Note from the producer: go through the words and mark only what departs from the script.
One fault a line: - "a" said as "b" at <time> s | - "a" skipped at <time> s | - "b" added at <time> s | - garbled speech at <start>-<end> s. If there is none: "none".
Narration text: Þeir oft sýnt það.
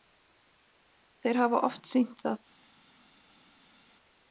- "hafa" added at 1.4 s